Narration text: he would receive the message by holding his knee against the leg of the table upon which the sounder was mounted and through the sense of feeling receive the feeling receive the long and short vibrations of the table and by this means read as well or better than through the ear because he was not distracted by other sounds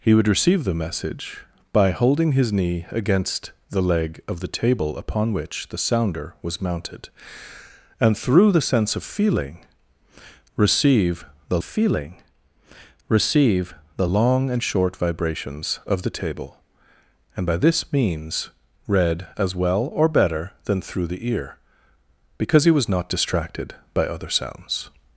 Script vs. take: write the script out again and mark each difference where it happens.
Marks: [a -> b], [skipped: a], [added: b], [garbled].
he would receive the message by holding his knee against the leg of the table upon which the sounder was mounted and through the sense of feeling receive the feeling receive the long and short vibrations of the table and by this means read as well or better than through the ear because he was not distracted by other sounds